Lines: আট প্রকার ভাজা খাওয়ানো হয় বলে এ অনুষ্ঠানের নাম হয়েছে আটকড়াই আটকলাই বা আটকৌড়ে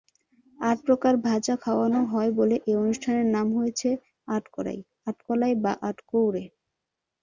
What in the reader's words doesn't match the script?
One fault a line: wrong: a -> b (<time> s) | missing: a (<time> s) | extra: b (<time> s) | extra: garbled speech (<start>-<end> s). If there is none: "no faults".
no faults